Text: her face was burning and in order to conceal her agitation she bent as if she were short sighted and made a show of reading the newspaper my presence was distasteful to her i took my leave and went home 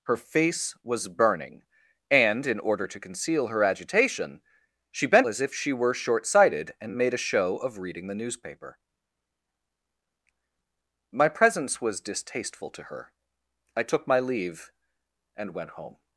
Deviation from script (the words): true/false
false